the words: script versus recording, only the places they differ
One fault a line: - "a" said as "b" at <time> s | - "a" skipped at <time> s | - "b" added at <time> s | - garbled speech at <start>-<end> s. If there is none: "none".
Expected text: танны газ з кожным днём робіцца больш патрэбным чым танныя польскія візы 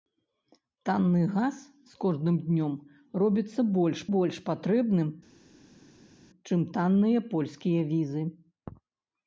- "больш" added at 4.1 s